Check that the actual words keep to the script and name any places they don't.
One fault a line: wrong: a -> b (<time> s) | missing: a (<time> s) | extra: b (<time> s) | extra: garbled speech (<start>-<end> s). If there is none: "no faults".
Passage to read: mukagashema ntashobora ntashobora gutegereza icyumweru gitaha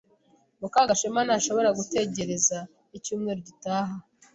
missing: ntashobora (1.7 s)